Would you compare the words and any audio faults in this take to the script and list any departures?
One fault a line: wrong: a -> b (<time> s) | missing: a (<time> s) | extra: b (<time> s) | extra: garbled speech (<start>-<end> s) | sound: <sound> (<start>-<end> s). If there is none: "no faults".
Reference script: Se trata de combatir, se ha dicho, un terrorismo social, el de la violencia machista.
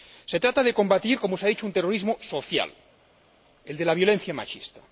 extra: como (1.2 s)